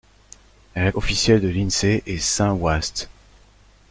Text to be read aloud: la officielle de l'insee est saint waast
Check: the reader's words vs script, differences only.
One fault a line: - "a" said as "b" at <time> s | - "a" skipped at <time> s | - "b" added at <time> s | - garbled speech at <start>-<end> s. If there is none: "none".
none